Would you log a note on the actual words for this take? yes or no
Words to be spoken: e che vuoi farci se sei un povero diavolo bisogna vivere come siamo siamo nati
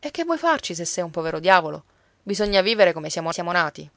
no